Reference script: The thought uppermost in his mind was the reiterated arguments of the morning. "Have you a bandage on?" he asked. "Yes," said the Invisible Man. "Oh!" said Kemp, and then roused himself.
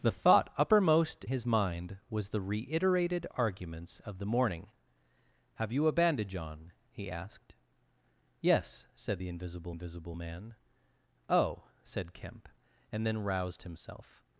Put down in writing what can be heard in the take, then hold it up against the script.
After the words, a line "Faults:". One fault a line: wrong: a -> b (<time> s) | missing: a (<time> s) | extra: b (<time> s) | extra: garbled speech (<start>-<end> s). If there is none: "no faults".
The thought uppermost his mind was the reiterated arguments of the morning. "Have you a bandage on?" he asked. "Yes," said the Invisible Invisible Man. "Oh!" said Kemp, and then roused himself.
Faults:
missing: in (1.2 s)
extra: Invisible (9.7 s)